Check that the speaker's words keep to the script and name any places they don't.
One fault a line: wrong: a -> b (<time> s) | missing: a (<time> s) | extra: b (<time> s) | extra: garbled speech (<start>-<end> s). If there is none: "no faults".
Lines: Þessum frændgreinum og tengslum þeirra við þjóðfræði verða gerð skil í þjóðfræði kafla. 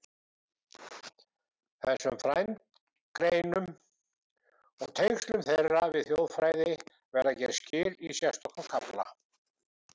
wrong: þjóðfræði -> sérstökum (8.2 s)